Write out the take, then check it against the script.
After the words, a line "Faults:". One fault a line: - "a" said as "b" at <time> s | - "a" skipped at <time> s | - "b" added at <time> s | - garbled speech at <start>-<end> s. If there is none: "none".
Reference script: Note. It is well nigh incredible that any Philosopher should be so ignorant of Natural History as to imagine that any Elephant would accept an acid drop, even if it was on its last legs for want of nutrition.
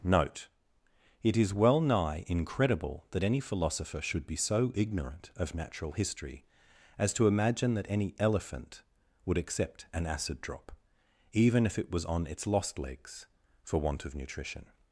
Note. It is well nigh incredible that any Philosopher should be so ignorant of Natural History as to imagine that any Elephant would accept an acid drop, even if it was on its lost legs for want of nutrition.
Faults:
- "last" said as "lost" at 12.5 s